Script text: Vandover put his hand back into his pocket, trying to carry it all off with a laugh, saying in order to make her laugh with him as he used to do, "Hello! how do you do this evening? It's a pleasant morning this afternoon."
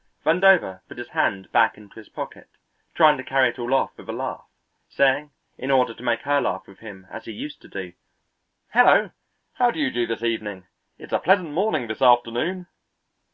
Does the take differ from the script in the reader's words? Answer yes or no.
no